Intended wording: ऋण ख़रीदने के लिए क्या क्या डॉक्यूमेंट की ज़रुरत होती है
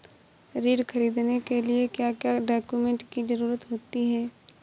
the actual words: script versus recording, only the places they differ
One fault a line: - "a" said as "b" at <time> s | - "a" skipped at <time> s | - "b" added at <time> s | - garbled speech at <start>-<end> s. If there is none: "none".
none